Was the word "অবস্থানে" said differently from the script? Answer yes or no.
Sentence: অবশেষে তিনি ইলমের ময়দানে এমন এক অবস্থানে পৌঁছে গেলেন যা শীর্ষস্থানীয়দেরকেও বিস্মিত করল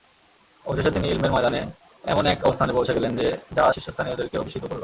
no